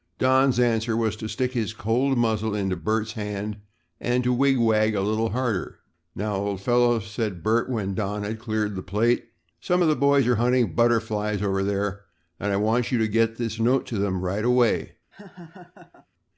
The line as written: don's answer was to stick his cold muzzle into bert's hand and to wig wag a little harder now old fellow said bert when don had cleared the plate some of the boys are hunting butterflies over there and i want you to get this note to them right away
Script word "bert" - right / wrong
right